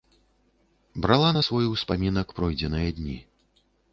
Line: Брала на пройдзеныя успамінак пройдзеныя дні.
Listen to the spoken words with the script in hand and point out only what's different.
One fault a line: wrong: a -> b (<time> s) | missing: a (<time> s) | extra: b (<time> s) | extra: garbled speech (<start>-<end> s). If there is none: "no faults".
wrong: пройдзеныя -> свой (1.5 s)